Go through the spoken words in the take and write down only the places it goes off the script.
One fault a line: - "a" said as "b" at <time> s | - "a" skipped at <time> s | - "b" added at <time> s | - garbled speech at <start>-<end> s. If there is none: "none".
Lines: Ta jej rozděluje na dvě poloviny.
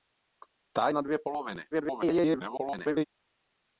- "jej rozděluje" skipped at 0.9 s
- garbled speech at 1.7-3.0 s